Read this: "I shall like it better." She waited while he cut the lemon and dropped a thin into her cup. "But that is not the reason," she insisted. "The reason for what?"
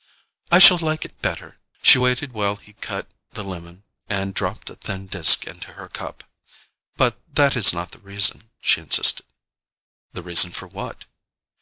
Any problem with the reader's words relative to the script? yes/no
yes